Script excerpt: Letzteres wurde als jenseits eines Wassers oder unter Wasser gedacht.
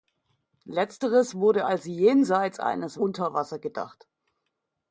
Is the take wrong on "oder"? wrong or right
wrong